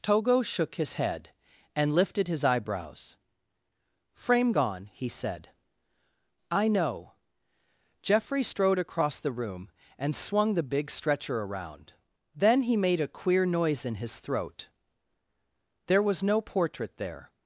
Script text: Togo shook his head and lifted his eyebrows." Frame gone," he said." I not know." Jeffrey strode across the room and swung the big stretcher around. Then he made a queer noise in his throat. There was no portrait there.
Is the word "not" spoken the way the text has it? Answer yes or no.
no